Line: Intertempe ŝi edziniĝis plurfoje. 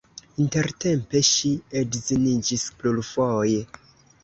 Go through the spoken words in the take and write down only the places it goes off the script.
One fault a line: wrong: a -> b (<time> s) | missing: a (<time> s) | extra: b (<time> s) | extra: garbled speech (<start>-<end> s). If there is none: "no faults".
no faults